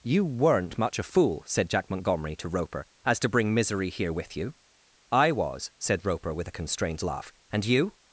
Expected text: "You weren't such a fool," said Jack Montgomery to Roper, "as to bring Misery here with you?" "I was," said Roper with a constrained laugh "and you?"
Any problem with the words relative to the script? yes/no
yes